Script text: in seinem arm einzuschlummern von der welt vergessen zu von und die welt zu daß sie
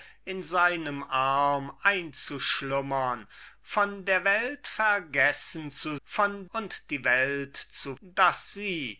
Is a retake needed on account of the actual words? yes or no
no